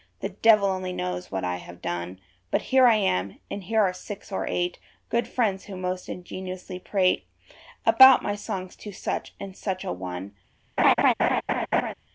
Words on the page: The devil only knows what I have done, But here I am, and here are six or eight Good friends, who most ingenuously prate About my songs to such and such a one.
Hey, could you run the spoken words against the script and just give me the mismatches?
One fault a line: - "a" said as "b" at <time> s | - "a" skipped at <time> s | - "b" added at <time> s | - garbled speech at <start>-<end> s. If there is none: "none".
none